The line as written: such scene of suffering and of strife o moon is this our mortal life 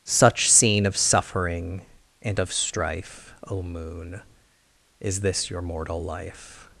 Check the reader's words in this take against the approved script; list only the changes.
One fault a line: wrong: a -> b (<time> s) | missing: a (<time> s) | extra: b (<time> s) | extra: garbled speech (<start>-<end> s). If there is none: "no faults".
wrong: our -> your (5.5 s)